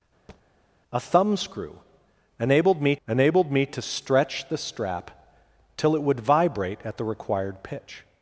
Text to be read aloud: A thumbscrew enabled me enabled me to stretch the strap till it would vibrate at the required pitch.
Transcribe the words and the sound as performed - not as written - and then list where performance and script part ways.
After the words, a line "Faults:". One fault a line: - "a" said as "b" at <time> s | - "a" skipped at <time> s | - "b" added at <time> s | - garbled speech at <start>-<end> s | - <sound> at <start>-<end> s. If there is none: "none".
A thumbscrew enabled me enabled me to stretch the strap till it would vibrate at the required pitch.
Faults:
- thud at 0.3-0.4 s